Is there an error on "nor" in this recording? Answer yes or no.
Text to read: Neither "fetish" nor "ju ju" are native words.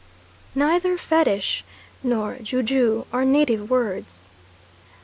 no